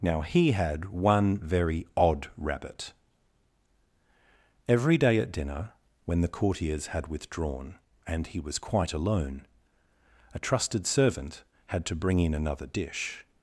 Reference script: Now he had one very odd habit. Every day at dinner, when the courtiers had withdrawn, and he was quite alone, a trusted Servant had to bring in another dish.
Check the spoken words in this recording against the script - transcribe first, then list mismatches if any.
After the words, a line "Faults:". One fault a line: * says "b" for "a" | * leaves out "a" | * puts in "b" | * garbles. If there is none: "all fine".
Now he had one very odd rabbit. Every day at dinner, when the courtiers had withdrawn, and he was quite alone, a trusted Servant had to bring in another dish.
Faults:
* says "rabbit" for "habit"